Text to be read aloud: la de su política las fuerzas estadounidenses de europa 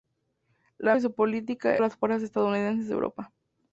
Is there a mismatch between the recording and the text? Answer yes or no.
no